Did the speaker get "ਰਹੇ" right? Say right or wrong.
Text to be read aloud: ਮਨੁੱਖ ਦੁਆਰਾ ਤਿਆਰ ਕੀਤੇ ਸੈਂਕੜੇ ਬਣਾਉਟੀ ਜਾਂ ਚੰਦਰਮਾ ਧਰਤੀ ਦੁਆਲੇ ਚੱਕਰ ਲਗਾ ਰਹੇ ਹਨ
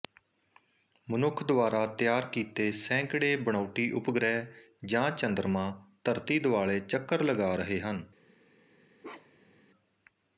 right